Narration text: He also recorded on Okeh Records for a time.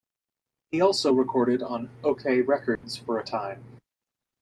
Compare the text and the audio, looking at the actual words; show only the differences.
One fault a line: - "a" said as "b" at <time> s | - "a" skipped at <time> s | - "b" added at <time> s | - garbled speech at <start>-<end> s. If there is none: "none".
none